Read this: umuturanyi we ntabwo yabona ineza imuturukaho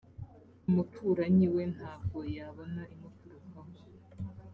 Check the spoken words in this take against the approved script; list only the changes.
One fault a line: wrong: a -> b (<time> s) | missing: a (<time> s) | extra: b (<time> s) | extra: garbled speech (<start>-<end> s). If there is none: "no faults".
missing: ineza (2.8 s)